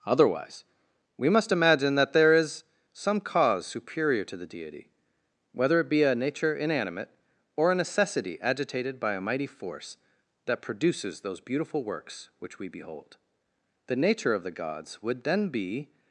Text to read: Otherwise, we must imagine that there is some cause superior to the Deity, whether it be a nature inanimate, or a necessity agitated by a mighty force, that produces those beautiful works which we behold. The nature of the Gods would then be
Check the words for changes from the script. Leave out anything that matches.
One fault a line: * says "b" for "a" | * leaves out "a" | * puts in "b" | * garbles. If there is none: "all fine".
all fine